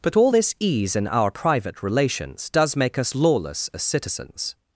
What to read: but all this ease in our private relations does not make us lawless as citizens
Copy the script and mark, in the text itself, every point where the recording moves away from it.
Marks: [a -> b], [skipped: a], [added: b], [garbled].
but all this ease in our private relations does [skipped: not] make us lawless as citizens